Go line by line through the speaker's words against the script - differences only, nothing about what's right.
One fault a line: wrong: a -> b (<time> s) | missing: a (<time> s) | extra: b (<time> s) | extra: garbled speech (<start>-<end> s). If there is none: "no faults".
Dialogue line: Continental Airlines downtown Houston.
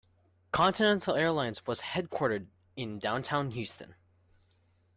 extra: was headquartered in (1.7 s)